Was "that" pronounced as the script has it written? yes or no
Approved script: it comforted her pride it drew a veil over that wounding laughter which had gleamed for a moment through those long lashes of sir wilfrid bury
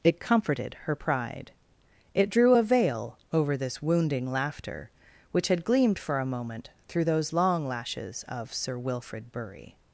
no